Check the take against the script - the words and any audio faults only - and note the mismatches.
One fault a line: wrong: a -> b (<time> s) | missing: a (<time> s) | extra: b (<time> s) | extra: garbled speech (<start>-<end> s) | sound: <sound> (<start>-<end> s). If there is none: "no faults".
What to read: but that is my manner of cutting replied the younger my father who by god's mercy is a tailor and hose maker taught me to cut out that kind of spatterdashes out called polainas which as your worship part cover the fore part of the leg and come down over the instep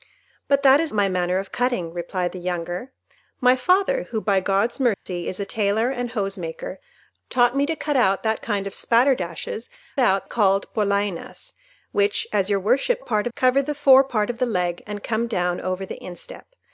sound: dropout (4.9-5.1 s)